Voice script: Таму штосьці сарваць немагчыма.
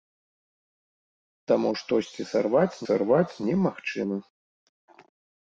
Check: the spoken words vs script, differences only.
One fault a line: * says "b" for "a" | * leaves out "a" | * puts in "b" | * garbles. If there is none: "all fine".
* puts in "сарваць"